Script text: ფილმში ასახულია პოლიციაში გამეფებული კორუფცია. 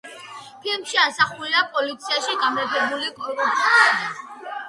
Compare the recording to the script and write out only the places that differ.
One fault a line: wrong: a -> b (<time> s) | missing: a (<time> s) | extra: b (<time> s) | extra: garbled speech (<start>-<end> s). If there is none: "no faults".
no faults